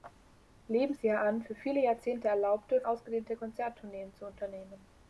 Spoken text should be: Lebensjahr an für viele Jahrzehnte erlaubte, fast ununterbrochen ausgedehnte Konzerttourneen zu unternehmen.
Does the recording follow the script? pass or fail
fail